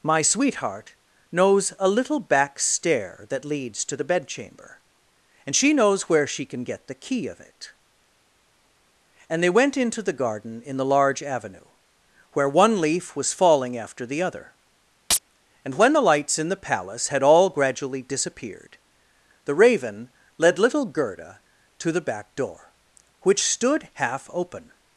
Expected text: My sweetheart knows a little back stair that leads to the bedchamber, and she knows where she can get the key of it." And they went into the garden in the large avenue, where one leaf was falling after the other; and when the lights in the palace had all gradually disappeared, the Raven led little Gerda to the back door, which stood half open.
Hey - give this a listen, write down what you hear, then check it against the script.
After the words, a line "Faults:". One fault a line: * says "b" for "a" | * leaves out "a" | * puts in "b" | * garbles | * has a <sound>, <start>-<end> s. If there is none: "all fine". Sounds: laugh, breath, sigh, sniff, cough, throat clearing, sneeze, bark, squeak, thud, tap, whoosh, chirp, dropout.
My sweetheart knows a little back stair that leads to the bedchamber, and she knows where she can get the key of it." And they went into the garden in the large avenue, where one leaf was falling after the other; and when the lights in the palace had all gradually disappeared, the Raven led little Gerda to the back door, which stood half open.
Faults:
* has a chirp, 15.1-15.2 s